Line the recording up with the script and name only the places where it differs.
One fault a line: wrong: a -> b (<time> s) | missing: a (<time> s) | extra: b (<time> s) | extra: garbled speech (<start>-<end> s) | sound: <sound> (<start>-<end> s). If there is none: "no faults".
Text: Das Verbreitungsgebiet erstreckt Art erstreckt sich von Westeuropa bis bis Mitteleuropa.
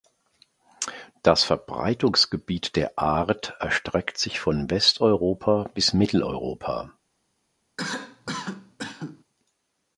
wrong: erstreckt -> der (2.8 s)
missing: bis (5.9 s)
sound: cough (7.8-9.2 s)